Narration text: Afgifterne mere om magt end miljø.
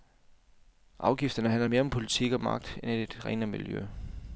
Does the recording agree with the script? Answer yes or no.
no